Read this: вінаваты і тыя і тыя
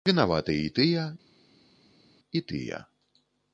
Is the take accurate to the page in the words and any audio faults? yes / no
yes